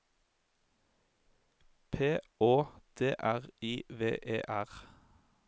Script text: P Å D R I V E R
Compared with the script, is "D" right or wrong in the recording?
right